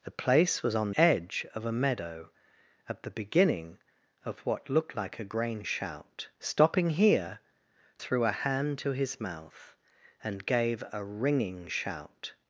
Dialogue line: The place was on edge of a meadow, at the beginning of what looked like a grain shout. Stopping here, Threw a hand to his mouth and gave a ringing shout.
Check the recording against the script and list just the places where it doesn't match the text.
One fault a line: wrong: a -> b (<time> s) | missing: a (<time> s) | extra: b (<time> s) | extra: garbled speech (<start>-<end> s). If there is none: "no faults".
no faults